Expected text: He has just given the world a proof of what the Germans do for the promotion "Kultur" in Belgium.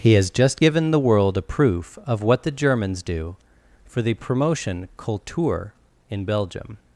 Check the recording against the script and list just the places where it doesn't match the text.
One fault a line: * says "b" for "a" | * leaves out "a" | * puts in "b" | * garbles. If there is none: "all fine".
all fine